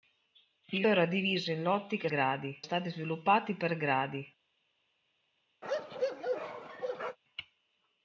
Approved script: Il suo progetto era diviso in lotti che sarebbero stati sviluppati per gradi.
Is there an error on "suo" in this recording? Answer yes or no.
yes